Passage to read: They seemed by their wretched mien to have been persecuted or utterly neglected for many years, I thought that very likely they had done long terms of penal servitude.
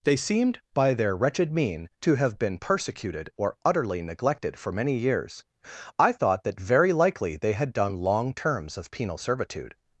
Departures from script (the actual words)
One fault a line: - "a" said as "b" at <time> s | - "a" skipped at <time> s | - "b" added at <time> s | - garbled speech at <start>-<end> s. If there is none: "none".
none